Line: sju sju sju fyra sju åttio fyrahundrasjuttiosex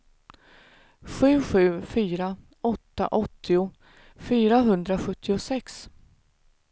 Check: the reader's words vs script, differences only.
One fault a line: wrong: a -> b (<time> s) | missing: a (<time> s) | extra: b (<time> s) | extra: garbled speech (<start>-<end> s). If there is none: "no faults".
missing: sju (1.8 s)
wrong: sju -> åtta (2.6 s)